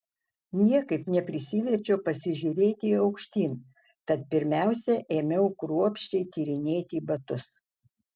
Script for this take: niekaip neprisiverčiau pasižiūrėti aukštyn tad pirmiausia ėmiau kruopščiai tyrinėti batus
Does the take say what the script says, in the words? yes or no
yes